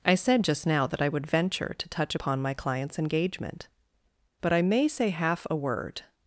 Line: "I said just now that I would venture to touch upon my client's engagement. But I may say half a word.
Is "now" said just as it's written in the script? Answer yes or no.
yes